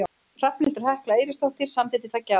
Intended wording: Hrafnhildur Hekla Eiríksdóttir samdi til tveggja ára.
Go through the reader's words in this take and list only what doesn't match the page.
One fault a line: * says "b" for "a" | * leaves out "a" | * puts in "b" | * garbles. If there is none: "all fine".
all fine